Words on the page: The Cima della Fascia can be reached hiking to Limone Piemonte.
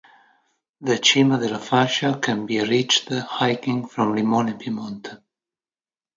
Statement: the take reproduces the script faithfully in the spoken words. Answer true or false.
false